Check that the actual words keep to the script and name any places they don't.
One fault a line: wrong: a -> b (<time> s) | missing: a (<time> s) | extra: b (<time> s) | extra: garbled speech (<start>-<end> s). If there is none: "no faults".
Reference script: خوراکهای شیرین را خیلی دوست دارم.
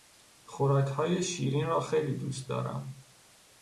no faults